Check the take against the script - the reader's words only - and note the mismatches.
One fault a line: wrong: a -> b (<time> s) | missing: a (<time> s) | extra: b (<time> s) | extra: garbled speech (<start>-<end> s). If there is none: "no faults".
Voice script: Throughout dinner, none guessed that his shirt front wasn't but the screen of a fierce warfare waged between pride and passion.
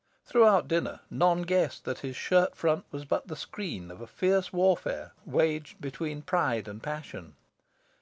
wrong: wasn't -> was (2.9 s)